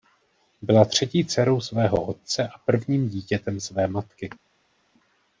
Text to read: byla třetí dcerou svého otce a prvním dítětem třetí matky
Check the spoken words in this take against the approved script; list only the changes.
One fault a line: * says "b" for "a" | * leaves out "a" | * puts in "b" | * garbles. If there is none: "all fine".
* says "své" for "třetí"